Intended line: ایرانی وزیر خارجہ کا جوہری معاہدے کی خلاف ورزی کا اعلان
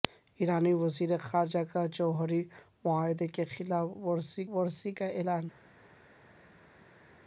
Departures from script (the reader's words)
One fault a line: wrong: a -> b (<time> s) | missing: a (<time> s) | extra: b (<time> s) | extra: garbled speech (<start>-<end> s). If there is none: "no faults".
extra: ورزی (4.5 s)